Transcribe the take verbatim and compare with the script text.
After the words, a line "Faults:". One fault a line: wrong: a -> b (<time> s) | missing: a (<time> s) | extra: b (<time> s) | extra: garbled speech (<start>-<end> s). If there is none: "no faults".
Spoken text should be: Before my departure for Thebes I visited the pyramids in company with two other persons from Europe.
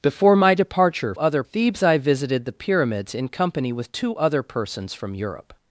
Before my departure other Thebes I visited the pyramids in company with two other persons from Europe.
Faults:
wrong: for -> other (1.2 s)